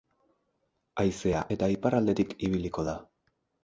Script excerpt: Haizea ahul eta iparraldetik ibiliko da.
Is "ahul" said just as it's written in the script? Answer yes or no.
no